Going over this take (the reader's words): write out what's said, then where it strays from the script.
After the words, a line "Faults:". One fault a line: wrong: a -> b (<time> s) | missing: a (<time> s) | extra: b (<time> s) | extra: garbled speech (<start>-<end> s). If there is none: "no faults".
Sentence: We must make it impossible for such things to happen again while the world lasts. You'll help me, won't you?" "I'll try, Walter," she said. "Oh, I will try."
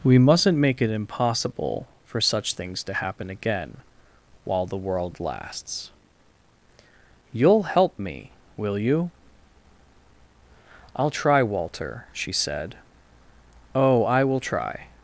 We mustn't make it impossible for such things to happen again while the world lasts. You'll help me, will you?" "I'll try, Walter," she said. "Oh, I will try."
Faults:
wrong: must -> mustn't (0.2 s)
wrong: won't -> will (8.6 s)